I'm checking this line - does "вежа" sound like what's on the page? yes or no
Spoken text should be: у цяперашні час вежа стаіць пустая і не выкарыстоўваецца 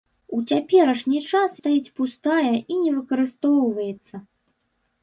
no